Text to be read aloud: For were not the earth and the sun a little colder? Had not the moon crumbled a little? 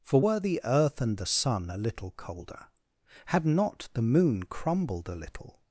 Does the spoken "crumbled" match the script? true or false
true